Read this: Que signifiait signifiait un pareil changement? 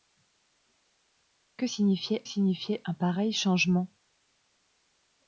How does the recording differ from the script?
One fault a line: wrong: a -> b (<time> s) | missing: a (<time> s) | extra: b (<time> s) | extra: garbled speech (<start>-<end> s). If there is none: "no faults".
no faults